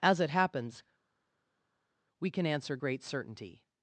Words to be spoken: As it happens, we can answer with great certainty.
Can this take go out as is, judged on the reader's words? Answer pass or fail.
fail